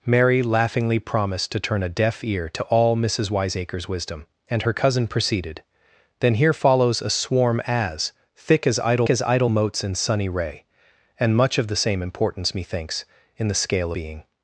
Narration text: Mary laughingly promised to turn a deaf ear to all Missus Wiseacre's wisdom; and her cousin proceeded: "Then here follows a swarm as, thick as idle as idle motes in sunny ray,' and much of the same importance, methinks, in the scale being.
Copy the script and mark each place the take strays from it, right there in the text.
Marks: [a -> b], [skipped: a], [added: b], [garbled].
Mary laughingly promised to turn a deaf ear to all Missus Wiseacre's wisdom; and her cousin proceeded: "Then here follows a swarm as, thick as idle as idle motes in sunny ray,' and much of the same importance, methinks, in the scale being.